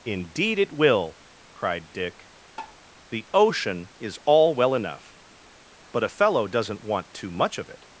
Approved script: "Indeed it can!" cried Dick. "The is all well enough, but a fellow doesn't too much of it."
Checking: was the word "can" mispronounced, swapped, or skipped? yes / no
yes